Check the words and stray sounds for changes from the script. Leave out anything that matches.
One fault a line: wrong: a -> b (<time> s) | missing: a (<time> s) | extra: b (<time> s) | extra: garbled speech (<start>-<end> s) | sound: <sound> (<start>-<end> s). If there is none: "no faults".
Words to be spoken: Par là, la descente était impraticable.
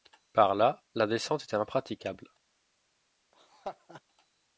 sound: laugh (3.3-4.0 s)